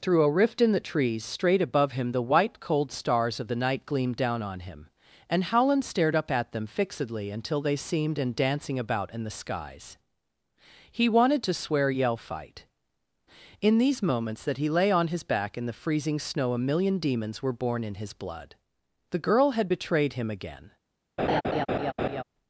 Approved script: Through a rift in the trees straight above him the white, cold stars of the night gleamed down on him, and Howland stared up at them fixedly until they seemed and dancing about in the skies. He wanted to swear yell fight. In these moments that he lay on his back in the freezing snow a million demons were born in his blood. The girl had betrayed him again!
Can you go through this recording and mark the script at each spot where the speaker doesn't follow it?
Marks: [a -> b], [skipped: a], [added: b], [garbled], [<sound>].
Through a rift in the trees straight above him the white, cold stars of the night gleamed down on him, and Howland stared up at them fixedly until they seemed and dancing about in the skies. He wanted to swear yell fight. In these moments that he lay on his back in the freezing snow a million demons were born in his blood. The girl had betrayed him again! [laugh]